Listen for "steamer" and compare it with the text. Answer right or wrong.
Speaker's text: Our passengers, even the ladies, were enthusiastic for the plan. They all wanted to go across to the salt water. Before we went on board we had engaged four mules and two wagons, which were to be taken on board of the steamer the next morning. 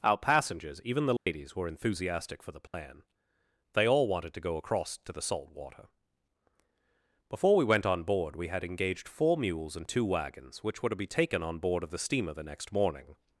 right